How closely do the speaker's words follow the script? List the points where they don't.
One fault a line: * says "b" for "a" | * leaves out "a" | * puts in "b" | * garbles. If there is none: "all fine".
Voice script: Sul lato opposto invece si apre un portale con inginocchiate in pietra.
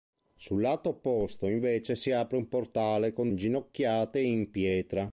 all fine